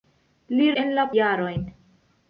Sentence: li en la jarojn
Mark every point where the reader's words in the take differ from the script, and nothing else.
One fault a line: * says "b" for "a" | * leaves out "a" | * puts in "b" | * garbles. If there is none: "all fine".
all fine